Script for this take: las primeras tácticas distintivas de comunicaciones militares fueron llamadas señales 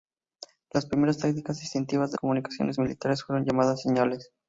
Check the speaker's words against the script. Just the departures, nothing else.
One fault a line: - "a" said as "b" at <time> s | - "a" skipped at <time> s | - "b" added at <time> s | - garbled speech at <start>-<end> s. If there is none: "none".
none